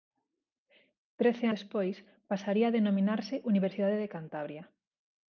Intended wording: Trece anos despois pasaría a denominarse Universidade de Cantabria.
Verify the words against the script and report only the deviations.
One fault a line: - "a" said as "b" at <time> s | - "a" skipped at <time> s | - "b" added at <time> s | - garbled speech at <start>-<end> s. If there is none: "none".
- "anos" skipped at 1.4 s